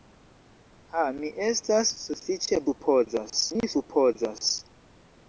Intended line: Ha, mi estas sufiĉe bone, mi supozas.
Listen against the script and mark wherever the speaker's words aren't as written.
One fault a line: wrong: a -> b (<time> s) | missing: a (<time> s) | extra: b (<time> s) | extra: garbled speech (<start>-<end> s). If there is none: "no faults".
wrong: bone -> supozas (2.7 s)